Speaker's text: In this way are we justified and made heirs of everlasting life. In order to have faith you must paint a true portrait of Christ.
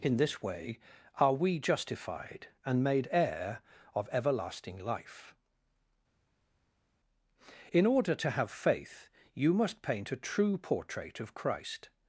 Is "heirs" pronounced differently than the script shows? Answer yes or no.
yes